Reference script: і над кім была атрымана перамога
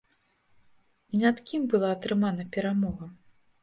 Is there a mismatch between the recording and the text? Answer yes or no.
no